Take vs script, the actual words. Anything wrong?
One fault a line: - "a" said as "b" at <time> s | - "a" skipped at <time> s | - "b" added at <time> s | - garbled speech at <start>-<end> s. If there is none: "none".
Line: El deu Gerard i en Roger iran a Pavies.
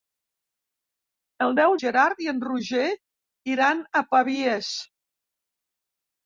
none